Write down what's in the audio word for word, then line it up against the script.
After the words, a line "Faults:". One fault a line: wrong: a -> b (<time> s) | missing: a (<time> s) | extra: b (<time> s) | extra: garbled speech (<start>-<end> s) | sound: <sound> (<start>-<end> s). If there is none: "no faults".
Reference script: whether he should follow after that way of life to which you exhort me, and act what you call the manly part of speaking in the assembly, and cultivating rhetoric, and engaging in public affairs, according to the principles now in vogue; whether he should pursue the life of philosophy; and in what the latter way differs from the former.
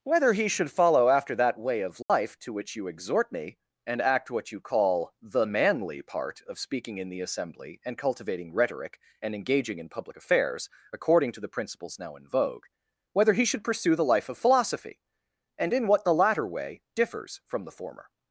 whether he should follow after that way of life to which you exhort me, and act what you call the manly part of speaking in the assembly, and cultivating rhetoric, and engaging in public affairs, according to the principles now in vogue; whether he should pursue the life of philosophy; and in what the latter way differs from the former.
Faults:
sound: dropout (2.0-2.1 s)